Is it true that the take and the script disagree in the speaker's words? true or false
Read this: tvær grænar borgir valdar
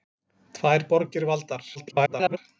true